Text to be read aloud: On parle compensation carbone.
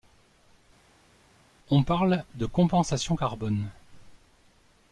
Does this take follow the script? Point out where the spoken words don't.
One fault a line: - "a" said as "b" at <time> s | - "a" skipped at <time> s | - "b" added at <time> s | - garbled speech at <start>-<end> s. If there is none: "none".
- "de" added at 2.3 s